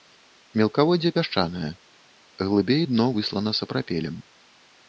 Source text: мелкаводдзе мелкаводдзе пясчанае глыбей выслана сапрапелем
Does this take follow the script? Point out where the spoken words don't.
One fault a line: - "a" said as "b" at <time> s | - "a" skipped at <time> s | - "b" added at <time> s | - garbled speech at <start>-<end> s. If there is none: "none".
- "мелкаводдзе" skipped at 1.1 s
- "дно" added at 2.9 s